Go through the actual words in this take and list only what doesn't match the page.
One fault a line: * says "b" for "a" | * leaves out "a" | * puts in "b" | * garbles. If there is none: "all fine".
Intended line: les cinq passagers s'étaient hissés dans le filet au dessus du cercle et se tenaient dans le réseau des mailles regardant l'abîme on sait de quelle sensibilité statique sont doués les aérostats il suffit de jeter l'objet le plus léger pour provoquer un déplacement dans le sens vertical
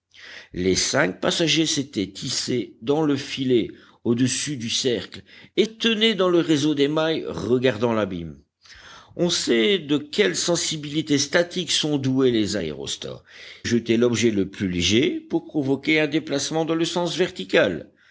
* leaves out "se"
* leaves out "il suffit de"